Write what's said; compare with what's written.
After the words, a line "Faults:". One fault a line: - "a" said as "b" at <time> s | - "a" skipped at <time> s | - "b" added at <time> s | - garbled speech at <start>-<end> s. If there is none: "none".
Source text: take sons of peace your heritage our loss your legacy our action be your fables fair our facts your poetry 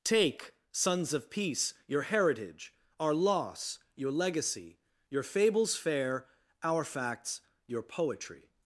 take sons of peace your heritage our loss your legacy your fables fair our facts your poetry
Faults:
- "our action be" skipped at 4.8 s